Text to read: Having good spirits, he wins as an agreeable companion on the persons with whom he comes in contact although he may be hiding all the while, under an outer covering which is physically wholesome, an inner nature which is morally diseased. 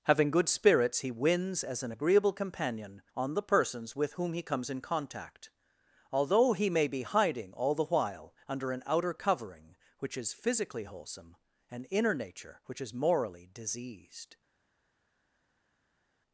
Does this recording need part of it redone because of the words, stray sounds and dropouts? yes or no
no